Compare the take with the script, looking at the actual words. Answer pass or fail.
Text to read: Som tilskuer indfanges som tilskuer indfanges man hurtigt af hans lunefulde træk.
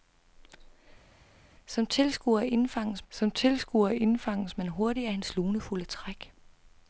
pass